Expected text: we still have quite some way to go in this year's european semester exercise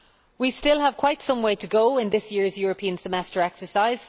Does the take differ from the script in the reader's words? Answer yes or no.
no